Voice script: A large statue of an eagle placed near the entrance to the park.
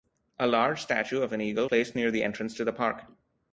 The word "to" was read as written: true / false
true